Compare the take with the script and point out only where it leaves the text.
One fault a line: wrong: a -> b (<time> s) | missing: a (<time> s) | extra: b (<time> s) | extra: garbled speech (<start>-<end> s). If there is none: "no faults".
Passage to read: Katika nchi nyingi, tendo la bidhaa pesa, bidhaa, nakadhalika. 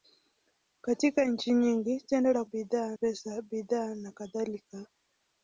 no faults